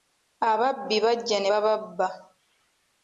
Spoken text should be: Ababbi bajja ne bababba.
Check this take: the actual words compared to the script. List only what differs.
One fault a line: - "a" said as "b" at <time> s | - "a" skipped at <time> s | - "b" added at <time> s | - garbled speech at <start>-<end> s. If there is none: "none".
none